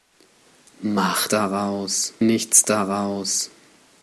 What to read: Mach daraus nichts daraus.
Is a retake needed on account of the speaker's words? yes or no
no